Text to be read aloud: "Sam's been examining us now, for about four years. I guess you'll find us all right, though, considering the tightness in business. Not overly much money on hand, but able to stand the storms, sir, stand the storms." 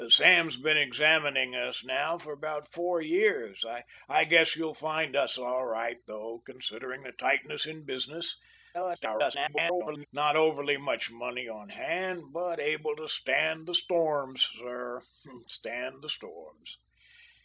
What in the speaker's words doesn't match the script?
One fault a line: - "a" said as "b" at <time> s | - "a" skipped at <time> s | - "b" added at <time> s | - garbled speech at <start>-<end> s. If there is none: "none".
- garbled speech at 8.7-10.1 s